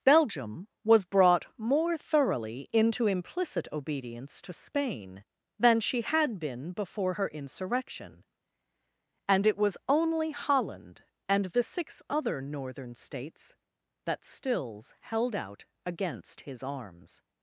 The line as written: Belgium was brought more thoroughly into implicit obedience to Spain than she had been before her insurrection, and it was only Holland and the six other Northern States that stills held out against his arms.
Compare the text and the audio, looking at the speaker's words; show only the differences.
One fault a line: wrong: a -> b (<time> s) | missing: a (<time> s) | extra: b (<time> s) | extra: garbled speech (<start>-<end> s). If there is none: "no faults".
no faults